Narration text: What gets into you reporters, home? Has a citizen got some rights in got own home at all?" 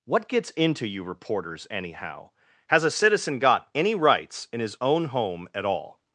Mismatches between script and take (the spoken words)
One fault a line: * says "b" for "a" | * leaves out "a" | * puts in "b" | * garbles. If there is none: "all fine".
* says "anyhow" for "home"
* says "any" for "some"
* says "his" for "got"